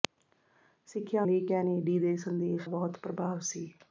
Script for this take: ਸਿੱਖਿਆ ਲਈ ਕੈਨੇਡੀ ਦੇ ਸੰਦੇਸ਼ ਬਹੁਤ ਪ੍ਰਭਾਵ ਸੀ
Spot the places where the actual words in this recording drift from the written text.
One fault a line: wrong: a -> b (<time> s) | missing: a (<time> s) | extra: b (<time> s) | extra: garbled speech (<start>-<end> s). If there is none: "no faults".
no faults